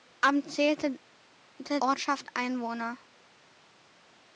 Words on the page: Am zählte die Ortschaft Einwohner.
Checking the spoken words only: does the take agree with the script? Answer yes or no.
no